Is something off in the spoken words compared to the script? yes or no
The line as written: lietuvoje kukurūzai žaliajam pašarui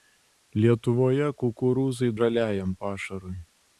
no